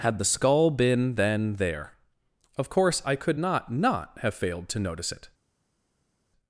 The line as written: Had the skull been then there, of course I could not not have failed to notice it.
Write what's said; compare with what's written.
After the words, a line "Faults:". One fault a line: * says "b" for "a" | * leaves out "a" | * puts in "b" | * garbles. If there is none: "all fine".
Had the skull been then there, of course I could not not have failed to notice it.
Faults:
all fine